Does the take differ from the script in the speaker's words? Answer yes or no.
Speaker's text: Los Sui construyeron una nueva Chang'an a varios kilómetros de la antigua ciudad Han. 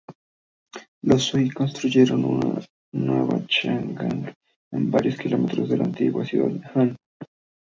no